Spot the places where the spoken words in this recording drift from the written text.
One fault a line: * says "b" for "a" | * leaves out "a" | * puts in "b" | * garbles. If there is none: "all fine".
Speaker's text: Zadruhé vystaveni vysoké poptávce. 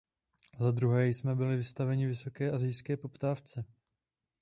* puts in "jsme byli"
* puts in "asijské"